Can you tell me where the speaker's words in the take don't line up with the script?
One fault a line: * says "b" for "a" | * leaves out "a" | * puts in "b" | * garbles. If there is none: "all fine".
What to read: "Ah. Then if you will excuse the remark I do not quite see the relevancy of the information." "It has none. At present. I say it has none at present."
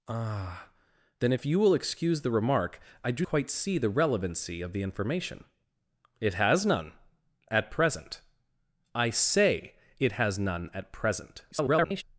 * leaves out "not"
* garbles